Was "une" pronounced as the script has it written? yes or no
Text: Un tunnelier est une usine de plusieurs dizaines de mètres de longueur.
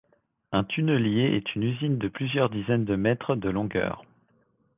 yes